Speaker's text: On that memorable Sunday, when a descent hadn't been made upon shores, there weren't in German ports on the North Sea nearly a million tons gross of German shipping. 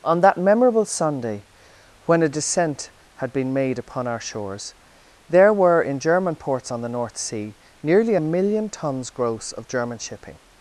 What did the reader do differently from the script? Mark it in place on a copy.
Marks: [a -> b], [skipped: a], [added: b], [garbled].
On that memorable Sunday, when a descent [hadn't -> had] been made upon [added: our] shores, there [weren't -> were] in German ports on the North Sea nearly a million tons gross of German shipping.